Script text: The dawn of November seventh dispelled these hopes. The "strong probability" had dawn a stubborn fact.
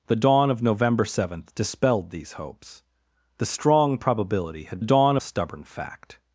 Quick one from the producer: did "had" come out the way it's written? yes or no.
yes